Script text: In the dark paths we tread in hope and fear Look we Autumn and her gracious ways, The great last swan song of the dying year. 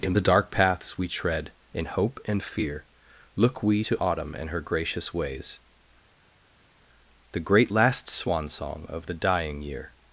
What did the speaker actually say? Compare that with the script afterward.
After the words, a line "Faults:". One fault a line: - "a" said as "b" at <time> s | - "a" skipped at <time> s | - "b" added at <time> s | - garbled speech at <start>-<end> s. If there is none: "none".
In the dark paths we tread in hope and fear Look we to Autumn and her gracious ways, The great last swan song of the dying year.
Faults:
- "to" added at 3.8 s